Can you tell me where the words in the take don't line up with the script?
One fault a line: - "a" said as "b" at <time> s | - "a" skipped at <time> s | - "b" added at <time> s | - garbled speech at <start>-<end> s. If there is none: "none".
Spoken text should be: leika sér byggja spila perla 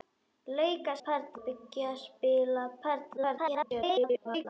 - "sér" said as "perla" at 1.0 s
- garbled speech at 3.2-4.5 s